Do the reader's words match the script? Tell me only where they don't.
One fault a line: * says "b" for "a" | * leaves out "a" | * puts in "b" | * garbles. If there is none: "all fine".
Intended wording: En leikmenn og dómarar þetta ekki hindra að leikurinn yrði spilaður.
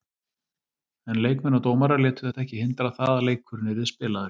* puts in "létu"
* puts in "það"